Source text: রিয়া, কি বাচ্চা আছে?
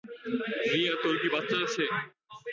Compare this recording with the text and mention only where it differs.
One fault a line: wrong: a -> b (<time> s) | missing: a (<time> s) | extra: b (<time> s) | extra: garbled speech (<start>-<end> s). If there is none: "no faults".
extra: তোর (1.0 s)